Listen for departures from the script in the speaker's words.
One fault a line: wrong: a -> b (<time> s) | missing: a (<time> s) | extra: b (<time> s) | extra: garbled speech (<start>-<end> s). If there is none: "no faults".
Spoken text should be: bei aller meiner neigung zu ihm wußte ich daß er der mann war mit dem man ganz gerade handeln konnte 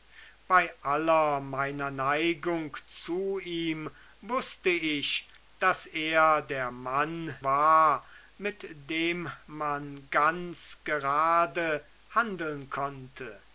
no faults